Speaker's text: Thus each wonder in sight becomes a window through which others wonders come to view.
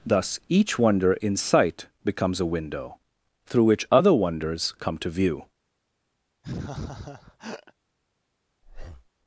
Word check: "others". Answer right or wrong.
wrong